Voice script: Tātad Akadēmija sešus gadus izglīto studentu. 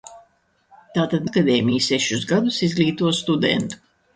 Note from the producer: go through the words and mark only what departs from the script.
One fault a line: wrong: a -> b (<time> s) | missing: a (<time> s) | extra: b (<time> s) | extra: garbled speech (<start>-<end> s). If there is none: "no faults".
no faults